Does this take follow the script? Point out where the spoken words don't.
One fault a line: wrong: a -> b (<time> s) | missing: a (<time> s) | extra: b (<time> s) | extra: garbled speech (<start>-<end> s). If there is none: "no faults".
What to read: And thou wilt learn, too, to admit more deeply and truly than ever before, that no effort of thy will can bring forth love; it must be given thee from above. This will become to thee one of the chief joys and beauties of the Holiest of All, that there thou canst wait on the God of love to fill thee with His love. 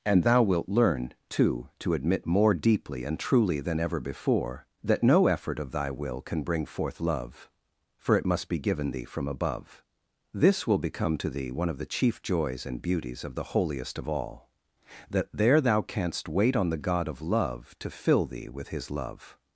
extra: for (8.0 s)